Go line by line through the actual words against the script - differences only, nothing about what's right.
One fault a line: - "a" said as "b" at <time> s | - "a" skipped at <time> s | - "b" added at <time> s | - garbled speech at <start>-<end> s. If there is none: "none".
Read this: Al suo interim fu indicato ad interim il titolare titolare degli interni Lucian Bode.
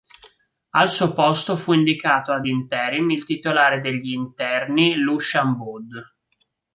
- "interim" said as "posto" at 1.1 s
- "titolare" skipped at 3.8 s